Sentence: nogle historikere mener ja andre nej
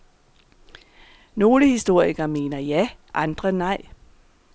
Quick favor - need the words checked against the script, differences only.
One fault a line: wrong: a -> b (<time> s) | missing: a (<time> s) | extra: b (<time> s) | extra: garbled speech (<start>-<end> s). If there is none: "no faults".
no faults